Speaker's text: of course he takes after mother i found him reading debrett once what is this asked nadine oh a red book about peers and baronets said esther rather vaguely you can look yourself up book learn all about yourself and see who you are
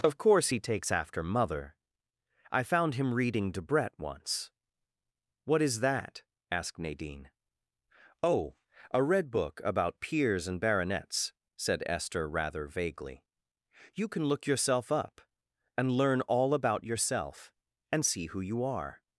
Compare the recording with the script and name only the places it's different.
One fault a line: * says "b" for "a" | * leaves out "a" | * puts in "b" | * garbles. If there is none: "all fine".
* says "that" for "this"
* says "and" for "book"